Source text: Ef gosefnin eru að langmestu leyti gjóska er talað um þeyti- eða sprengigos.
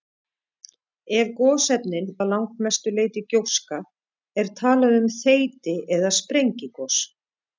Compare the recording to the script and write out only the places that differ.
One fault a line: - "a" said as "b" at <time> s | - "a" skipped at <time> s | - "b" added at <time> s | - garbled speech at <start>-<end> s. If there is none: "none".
- "eru" skipped at 2.1 s